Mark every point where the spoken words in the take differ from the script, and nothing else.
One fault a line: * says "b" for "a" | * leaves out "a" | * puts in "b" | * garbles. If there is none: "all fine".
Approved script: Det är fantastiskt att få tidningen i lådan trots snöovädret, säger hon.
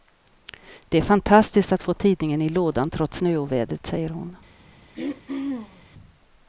all fine